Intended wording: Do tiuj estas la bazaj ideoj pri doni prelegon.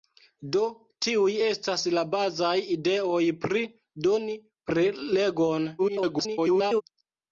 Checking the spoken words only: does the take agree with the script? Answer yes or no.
no